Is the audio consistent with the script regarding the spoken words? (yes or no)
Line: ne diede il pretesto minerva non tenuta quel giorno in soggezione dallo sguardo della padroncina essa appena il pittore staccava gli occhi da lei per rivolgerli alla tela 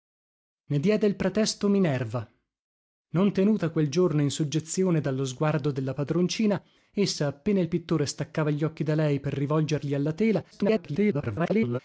no